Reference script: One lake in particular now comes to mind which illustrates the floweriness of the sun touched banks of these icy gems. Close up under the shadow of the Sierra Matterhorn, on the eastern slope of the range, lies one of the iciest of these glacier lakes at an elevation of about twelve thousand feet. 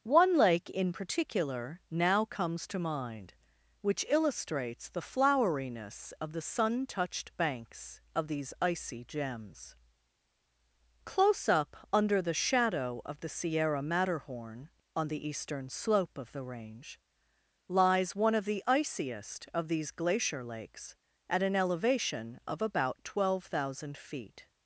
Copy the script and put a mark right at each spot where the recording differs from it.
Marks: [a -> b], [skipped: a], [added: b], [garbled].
One lake in particular now comes to mind which illustrates the floweriness of the sun touched banks of these icy gems. Close up under the shadow of the Sierra Matterhorn, on the eastern slope of the range, lies one of the iciest of these glacier lakes at an elevation of about twelve thousand feet.